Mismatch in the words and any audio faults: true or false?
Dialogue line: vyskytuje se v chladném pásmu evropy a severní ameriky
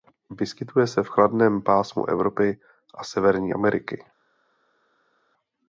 false